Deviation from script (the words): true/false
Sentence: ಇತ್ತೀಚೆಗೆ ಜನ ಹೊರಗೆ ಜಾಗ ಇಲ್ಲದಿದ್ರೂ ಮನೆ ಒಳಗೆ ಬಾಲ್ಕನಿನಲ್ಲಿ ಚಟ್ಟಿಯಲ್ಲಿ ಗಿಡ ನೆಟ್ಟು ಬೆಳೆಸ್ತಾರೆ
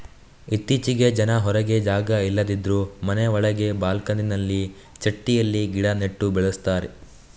false